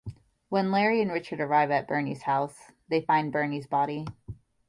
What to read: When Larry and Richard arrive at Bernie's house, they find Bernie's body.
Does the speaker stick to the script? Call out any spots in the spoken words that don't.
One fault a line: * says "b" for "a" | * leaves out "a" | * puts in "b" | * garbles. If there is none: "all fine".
all fine